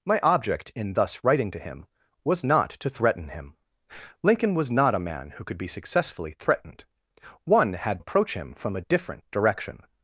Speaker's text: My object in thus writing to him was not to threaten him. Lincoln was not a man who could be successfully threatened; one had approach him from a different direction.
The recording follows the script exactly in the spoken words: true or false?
true